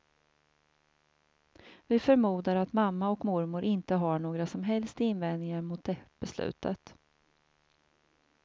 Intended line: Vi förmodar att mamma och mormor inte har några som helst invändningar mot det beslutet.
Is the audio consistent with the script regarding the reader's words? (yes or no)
yes